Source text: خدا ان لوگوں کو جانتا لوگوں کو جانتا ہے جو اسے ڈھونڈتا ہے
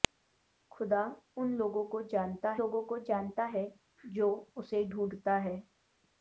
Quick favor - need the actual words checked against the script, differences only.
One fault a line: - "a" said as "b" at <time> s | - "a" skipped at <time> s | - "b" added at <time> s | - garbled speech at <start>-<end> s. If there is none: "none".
none